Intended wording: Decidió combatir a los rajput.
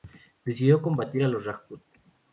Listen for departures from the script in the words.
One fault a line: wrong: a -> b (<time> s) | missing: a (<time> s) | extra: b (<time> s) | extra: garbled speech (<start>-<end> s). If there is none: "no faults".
no faults